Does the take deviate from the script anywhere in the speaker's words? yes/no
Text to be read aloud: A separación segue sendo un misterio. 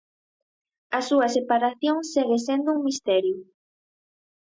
yes